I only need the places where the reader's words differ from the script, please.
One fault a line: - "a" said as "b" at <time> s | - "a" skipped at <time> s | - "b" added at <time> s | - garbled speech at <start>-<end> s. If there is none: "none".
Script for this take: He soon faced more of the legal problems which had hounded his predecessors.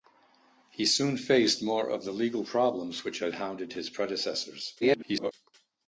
- garbled speech at 4.8-5.3 s